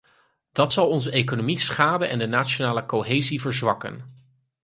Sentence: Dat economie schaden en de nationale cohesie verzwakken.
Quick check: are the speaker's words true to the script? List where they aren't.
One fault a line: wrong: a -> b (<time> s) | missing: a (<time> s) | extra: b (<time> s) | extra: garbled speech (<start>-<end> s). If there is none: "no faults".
extra: zal onze (0.7 s)